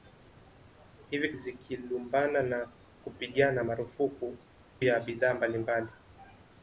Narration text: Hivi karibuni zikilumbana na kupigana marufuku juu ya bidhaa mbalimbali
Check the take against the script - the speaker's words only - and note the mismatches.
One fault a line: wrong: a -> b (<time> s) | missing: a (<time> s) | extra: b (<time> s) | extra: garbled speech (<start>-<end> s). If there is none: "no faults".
missing: karibuni (1.3 s)
missing: juu (4.4 s)